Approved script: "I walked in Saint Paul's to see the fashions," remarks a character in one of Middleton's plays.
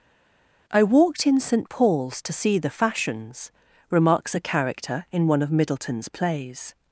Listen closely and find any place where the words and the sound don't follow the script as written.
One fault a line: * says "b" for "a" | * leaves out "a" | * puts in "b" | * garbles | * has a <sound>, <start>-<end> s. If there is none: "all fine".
all fine